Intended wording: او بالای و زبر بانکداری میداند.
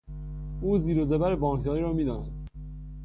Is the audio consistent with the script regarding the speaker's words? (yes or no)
no